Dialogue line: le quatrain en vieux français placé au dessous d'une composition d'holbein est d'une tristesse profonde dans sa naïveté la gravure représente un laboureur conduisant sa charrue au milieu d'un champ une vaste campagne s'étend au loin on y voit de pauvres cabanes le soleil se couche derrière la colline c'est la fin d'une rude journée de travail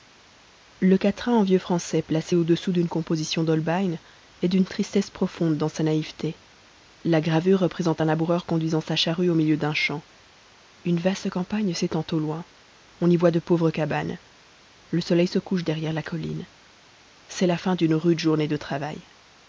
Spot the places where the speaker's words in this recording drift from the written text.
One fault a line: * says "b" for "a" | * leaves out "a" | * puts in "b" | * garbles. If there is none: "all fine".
all fine